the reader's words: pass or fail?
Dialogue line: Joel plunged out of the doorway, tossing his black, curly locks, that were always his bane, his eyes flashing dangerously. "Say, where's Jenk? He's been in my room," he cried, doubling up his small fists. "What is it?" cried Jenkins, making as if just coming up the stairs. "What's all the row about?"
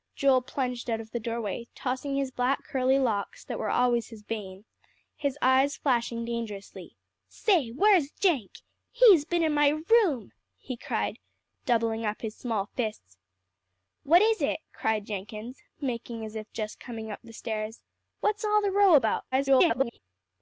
fail